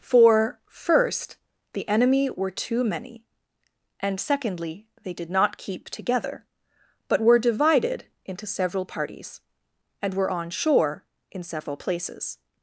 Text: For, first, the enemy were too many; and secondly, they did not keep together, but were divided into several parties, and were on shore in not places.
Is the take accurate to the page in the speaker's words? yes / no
no